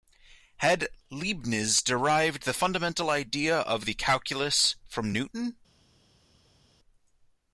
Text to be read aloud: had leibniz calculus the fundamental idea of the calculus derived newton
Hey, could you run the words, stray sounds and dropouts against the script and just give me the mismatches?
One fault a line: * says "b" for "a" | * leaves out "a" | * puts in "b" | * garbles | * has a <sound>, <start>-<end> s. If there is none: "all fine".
* says "derived" for "calculus"
* says "from" for "derived"